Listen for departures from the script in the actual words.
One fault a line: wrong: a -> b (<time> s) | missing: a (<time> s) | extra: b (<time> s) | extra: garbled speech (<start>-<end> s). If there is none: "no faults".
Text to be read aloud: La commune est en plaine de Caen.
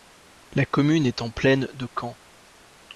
no faults